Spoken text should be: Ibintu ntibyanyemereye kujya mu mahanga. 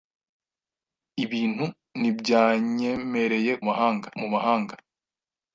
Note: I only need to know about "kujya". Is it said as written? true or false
false